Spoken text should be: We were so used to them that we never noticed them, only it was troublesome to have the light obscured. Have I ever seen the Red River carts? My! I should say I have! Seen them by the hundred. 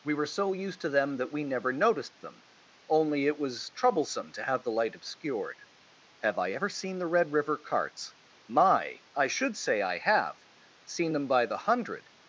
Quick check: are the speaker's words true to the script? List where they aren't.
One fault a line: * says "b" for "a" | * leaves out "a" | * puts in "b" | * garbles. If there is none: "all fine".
all fine